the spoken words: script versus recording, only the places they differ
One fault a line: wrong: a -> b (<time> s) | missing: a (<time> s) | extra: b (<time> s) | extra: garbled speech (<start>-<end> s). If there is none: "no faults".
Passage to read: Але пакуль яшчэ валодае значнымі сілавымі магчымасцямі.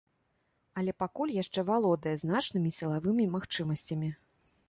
no faults